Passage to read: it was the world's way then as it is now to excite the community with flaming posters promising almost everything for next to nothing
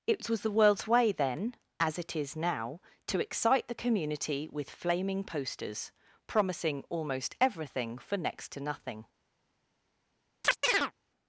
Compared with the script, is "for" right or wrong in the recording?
right